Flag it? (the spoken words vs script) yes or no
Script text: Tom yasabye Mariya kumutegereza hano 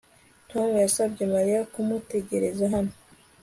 no